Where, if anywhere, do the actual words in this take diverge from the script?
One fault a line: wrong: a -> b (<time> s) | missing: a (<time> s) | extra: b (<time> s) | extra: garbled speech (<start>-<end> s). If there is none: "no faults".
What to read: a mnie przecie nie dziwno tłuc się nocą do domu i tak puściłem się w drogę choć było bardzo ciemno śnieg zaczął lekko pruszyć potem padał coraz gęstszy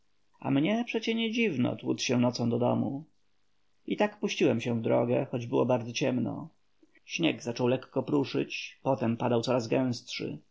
no faults